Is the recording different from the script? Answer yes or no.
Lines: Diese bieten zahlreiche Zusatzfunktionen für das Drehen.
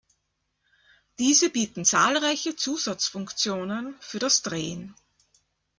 no